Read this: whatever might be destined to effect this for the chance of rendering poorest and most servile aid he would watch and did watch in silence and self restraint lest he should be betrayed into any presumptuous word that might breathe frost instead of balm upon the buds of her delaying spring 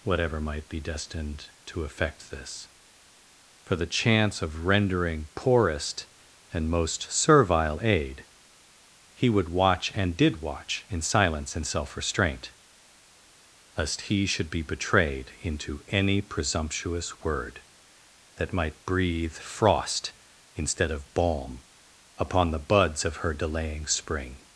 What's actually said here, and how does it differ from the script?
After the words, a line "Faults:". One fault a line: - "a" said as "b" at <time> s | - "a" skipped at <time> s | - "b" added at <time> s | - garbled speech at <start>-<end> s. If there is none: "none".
whatever might be destined to effect this for the chance of rendering poorest and most servile aid he would watch and did watch in silence and self restraint lest he should be betrayed into any presumptuous word that might breathe frost instead of balm upon the buds of her delaying spring
Faults:
none